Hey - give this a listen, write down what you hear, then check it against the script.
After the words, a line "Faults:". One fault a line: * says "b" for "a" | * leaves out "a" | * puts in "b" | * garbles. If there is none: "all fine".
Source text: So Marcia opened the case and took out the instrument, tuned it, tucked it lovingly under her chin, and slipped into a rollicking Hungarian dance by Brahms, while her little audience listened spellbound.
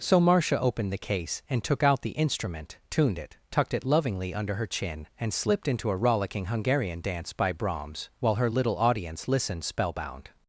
So Marcia opened the case and took out the instrument, tuned it, tucked it lovingly under her chin, and slipped into a rollicking Hungarian dance by Brahms, while her little audience listened spellbound.
Faults:
all fine